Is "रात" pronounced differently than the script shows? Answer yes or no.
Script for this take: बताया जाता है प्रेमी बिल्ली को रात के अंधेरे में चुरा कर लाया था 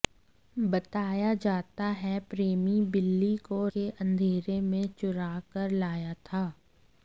yes